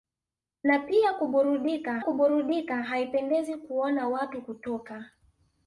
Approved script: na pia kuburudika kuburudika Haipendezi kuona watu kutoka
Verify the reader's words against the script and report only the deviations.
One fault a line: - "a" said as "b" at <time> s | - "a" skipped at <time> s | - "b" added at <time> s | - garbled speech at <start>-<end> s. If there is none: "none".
none